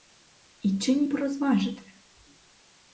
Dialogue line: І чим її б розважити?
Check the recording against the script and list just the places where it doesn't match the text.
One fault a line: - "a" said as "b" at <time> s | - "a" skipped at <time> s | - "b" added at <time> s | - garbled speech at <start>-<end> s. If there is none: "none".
- "її" skipped at 1.0 s